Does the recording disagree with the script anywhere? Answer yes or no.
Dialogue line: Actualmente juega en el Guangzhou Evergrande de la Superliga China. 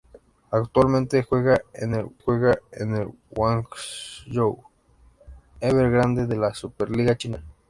yes